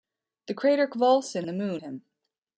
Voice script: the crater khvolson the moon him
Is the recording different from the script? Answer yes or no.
no